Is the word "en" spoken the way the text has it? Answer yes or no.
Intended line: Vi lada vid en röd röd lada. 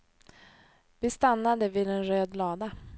yes